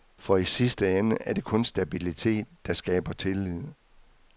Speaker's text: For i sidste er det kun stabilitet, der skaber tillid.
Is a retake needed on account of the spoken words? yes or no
yes